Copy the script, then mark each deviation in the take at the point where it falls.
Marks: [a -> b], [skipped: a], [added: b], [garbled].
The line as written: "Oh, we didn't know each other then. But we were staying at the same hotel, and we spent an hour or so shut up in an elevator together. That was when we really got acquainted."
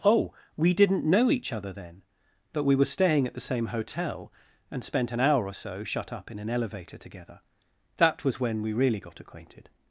"Oh, we didn't know each other then. But we were staying at the same hotel, and [skipped: we] spent an hour or so shut up in an elevator together. That was when we really got acquainted."